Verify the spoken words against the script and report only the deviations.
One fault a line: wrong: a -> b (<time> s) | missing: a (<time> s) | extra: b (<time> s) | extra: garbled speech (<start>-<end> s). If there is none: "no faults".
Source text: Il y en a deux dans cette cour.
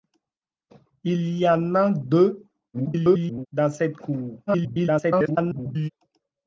extra: garbled speech (2.7-3.5 s)
extra: garbled speech (4.5-5.9 s)